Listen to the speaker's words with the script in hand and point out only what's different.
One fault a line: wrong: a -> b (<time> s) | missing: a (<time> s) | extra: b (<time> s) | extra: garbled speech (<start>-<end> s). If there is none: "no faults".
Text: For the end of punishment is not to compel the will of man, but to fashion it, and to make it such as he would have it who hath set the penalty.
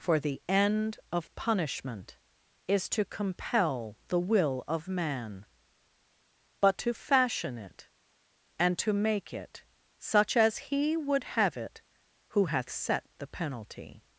missing: not (2.9 s)